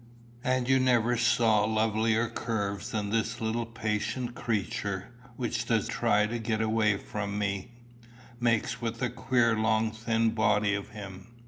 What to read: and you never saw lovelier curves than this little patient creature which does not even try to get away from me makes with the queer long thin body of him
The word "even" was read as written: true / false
false